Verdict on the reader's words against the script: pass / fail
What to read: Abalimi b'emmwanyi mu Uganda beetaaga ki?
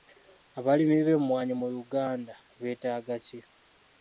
pass